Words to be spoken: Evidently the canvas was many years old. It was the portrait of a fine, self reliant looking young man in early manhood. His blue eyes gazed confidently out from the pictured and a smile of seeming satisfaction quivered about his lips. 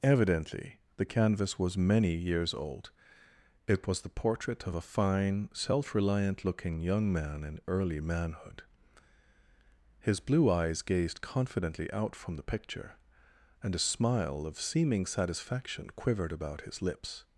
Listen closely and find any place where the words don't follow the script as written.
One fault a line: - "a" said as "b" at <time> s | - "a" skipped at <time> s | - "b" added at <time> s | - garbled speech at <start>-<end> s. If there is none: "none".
- "pictured" said as "picture" at 12.5 s